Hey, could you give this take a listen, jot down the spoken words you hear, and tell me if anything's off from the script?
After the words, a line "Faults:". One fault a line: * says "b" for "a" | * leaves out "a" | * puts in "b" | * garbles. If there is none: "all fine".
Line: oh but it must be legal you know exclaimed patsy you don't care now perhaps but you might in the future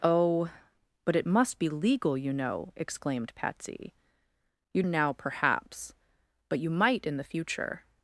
oh but it must be legal you know exclaimed patsy you now perhaps but you might in the future
Faults:
* leaves out "don't care"